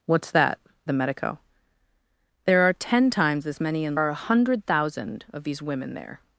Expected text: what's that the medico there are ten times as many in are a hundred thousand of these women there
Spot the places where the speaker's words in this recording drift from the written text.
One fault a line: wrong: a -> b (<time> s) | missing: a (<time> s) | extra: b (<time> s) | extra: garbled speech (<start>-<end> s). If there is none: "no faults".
no faults